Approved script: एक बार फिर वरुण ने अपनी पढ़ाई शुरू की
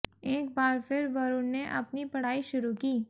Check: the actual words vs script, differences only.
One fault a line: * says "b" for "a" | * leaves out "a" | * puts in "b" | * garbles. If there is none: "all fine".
all fine